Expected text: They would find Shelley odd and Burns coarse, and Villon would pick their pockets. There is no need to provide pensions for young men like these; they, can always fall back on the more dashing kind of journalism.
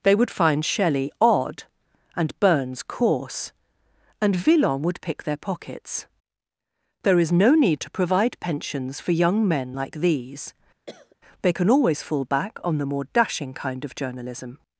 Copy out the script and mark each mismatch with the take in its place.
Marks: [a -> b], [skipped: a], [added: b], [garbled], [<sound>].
They would find Shelley odd and Burns coarse, and Villon would pick their pockets. There is no need to provide pensions for young men like these; [cough] they, can always fall back on the more dashing kind of journalism.